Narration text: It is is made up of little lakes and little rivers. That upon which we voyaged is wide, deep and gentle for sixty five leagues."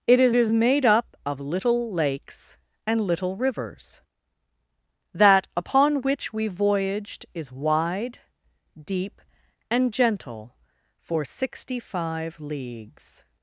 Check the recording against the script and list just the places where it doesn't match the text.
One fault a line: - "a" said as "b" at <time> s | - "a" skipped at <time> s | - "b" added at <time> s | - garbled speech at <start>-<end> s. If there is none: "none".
none